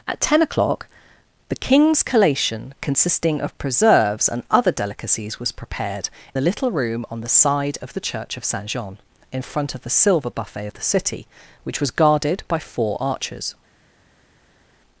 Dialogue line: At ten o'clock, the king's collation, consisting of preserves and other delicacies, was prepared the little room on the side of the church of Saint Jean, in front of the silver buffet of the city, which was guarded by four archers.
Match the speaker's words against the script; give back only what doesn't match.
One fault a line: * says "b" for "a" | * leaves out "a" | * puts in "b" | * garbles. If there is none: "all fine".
all fine